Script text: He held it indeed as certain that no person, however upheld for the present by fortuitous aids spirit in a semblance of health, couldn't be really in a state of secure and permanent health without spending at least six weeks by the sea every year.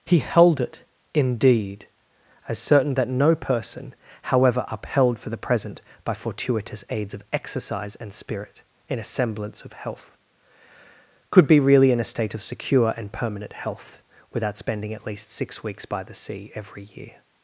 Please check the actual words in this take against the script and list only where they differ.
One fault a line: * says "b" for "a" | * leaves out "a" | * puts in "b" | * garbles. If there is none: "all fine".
* puts in "of exercise and"
* says "could" for "couldn't"